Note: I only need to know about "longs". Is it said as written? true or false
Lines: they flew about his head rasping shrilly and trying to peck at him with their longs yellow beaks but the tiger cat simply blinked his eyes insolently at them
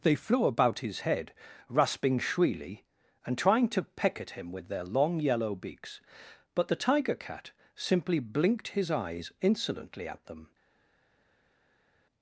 false